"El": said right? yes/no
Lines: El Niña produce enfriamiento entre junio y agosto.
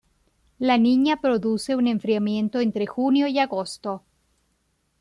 no